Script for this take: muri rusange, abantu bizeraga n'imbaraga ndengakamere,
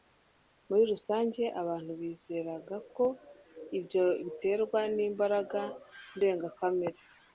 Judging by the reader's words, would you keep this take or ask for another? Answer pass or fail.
fail